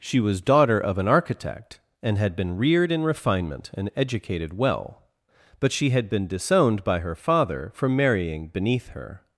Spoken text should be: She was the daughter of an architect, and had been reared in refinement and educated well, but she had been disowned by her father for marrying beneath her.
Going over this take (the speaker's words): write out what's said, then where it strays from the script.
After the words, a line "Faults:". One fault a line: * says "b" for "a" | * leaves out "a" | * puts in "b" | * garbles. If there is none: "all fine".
She was daughter of an architect, and had been reared in refinement and educated well, but she had been disowned by her father for marrying beneath her.
Faults:
* leaves out "the"